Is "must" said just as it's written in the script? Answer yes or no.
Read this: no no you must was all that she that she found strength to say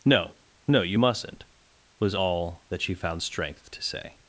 no